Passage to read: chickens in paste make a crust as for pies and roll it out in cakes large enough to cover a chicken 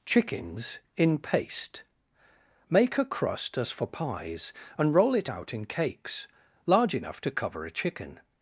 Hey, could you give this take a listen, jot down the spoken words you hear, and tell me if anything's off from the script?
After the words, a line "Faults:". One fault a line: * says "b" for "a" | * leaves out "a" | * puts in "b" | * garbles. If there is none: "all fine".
chickens in paste make a crust as for pies and roll it out in cakes large enough to cover a chicken
Faults:
all fine